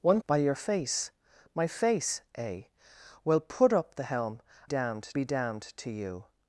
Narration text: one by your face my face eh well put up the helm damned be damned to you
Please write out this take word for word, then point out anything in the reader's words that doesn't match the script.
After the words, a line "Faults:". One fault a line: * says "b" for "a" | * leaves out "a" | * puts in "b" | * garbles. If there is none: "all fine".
one by your face my face eh well put up the helm damned be damned to you
Faults:
all fine